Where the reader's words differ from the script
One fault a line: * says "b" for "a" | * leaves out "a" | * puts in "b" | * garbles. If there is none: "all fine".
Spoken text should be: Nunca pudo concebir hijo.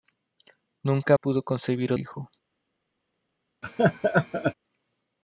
all fine